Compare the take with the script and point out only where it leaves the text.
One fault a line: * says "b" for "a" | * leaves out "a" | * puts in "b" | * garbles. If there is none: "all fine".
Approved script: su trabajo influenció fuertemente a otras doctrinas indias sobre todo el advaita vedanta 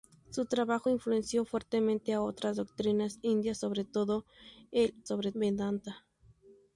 * says "sobre" for "advaita"